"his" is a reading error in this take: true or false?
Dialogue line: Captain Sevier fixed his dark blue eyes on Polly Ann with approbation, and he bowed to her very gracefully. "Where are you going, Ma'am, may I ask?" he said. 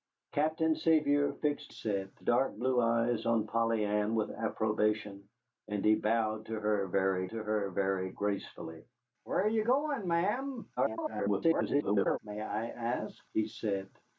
true